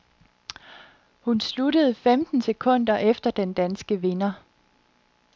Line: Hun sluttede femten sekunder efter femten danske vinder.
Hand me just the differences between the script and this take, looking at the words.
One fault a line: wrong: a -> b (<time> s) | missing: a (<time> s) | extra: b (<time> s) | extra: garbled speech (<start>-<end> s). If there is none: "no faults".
wrong: femten -> den (3.3 s)